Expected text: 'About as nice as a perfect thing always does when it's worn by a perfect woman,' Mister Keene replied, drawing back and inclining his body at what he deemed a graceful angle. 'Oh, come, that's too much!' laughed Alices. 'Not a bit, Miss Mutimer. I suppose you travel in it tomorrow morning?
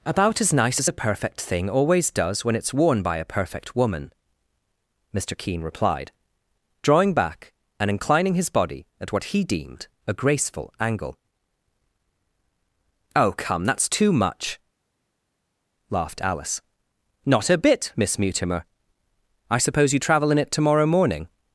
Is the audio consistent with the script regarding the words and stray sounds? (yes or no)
no